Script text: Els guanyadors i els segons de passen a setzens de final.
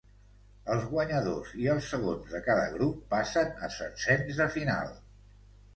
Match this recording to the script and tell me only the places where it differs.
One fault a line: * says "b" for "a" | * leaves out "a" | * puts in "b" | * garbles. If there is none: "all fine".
* puts in "cada grup"